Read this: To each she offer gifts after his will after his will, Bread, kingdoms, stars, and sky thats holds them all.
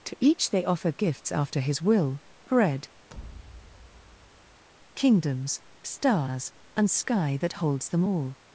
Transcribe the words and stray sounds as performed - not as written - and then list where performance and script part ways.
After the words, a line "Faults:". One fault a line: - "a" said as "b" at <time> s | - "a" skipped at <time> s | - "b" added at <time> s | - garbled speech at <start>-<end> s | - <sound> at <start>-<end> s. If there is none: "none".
To each they offer gifts after his will, Bread, kingdoms, stars, and sky that holds them all.
Faults:
- "she" said as "they" at 0.5 s
- "after his will" skipped at 2.2 s
- thud at 3.1-4.6 s
- "thats" said as "that" at 7.4 s